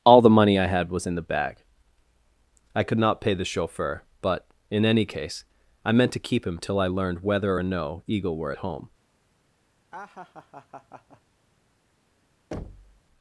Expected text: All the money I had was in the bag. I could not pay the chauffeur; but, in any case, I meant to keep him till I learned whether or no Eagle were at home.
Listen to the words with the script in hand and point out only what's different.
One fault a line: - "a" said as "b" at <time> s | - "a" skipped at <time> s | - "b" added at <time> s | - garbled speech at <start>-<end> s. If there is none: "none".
none